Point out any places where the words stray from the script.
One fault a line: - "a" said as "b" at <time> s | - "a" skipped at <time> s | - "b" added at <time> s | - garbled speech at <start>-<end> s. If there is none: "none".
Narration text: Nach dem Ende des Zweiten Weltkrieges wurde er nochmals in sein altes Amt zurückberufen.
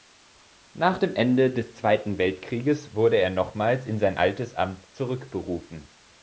none